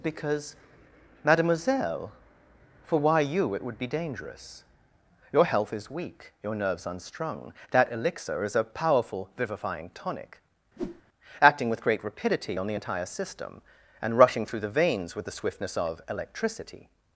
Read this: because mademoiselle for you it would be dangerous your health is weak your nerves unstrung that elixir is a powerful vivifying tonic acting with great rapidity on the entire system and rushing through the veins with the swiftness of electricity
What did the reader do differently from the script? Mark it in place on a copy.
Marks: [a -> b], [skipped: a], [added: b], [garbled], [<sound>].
because mademoiselle for [added: why] you it would be dangerous your health is weak your nerves unstrung that elixir is a powerful vivifying tonic [whoosh] acting with great rapidity on the entire system and rushing through the veins with the swiftness of electricity